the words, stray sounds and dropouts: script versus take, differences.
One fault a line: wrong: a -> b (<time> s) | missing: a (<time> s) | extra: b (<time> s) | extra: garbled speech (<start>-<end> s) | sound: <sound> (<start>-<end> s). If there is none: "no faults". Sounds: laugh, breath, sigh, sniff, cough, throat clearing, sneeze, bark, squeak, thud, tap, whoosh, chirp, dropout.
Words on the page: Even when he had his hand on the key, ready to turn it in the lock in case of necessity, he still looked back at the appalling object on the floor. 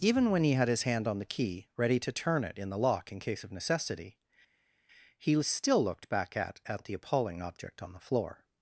extra: at (6.6 s)